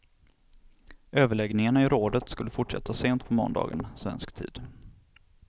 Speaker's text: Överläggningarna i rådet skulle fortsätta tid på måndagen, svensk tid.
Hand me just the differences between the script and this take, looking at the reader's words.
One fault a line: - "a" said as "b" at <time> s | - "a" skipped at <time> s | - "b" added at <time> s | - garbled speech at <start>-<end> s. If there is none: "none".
- "tid" said as "sent" at 2.9 s